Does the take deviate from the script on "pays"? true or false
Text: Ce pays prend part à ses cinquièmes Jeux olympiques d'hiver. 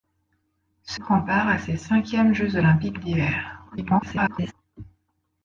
true